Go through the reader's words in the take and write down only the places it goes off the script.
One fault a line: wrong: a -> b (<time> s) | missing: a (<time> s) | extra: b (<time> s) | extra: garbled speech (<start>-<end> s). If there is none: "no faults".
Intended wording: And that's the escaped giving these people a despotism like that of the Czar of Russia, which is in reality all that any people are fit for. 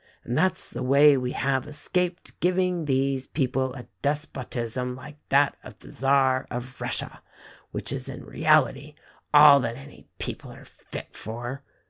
extra: way we have (0.8 s)